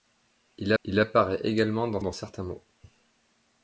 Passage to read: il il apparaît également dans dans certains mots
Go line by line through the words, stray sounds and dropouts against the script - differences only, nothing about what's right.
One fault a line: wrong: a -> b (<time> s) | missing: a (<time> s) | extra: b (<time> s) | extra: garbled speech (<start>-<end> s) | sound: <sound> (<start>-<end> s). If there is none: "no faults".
no faults